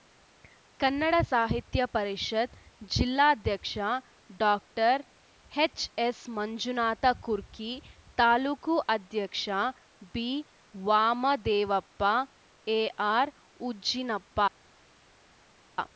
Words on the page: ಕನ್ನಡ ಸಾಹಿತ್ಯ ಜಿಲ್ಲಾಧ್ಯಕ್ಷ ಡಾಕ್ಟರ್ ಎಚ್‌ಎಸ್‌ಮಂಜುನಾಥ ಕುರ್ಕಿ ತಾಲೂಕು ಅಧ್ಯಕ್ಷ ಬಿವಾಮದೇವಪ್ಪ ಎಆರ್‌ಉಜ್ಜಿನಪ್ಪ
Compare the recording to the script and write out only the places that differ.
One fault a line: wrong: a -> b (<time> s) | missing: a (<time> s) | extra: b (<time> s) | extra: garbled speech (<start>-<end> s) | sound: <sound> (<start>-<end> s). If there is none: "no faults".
extra: ಪರಿಷತ್ (1.9 s)